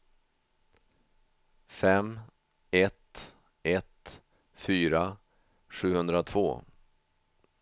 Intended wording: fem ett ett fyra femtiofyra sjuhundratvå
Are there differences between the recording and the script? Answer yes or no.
yes